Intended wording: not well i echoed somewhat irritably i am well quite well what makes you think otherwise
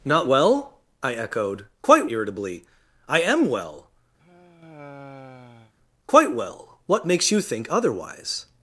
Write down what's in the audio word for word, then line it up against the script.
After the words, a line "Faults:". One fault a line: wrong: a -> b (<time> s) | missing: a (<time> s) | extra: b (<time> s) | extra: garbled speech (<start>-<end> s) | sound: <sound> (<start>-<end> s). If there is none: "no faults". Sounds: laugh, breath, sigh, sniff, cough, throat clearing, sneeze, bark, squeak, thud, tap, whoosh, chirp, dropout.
not well i echoed quite irritably i am well quite well what makes you think otherwise
Faults:
wrong: somewhat -> quite (1.8 s)
sound: sigh (4.2-5.7 s)